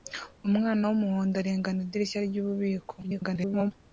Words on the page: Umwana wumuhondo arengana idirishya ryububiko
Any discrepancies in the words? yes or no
yes